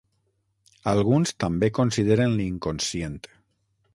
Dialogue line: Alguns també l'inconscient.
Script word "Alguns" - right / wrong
right